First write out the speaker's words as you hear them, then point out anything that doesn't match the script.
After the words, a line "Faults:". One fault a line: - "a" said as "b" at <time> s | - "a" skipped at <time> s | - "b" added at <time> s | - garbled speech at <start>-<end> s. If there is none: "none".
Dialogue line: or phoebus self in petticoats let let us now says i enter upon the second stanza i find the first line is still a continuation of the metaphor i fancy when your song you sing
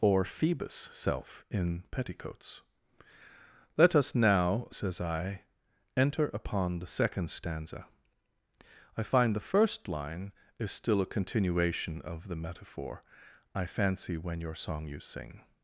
or phoebus self in petticoats let us now says i enter upon the second stanza i find the first line is still a continuation of the metaphor i fancy when your song you sing
Faults:
- "let" skipped at 4.0 s